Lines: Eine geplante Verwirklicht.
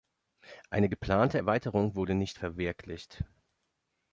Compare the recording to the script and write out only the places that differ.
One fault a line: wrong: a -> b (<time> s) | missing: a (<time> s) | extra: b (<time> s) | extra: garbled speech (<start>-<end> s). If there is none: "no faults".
extra: Erweiterung wurde nicht (1.4 s)